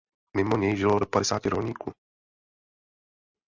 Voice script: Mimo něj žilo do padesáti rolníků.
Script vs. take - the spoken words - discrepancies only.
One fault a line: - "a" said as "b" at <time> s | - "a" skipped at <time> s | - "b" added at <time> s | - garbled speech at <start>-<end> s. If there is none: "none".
none